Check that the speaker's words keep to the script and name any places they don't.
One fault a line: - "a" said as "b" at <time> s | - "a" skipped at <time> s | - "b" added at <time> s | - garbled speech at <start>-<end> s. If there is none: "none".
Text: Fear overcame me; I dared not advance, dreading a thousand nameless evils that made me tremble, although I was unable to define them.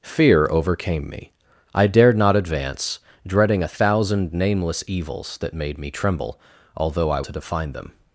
- "was unable" skipped at 7.2 s